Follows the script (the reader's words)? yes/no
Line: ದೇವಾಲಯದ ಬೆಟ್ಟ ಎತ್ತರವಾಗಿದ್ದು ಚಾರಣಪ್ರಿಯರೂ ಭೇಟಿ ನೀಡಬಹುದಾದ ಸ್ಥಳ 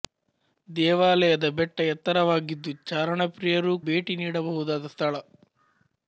yes